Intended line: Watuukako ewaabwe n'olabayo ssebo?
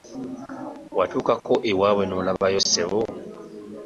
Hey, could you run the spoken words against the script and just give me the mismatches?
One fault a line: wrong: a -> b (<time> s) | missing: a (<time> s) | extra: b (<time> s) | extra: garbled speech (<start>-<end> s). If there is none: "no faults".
no faults